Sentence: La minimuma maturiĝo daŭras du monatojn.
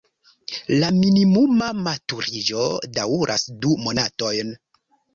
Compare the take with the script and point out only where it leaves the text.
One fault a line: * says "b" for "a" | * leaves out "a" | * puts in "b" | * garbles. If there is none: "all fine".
all fine